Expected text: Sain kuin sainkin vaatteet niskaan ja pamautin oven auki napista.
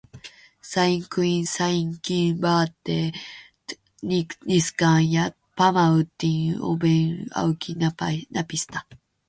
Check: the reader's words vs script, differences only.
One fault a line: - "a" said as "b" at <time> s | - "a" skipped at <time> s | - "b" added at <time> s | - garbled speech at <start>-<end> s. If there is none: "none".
none